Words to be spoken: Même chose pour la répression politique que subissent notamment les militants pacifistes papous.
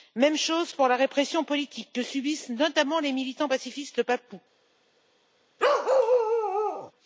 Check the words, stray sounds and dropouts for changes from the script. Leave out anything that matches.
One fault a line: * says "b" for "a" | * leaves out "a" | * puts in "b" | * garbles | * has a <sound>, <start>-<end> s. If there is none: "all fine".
* has a bark, 5.6-6.9 s